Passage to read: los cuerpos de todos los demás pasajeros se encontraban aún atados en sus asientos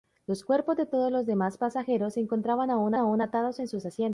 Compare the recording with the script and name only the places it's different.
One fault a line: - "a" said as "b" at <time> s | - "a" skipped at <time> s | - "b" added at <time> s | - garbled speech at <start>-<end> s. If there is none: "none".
- "aún" added at 3.0 s